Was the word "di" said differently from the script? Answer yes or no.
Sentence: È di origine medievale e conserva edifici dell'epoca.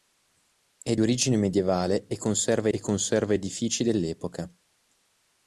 yes